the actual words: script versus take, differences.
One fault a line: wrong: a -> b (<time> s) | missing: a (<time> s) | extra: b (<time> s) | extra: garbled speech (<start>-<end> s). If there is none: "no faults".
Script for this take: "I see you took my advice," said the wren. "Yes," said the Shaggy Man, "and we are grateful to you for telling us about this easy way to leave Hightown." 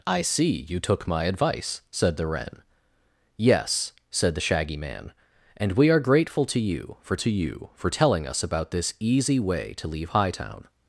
extra: to you for (7.1 s)